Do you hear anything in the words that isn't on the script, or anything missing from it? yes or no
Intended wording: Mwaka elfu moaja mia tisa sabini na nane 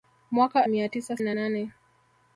yes